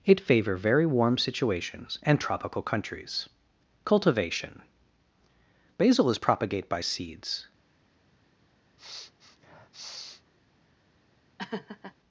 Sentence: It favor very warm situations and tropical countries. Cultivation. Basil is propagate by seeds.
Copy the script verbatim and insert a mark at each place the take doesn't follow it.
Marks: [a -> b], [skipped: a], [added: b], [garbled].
It favor very warm situations and tropical countries. Cultivation. Basil is propagate by seeds.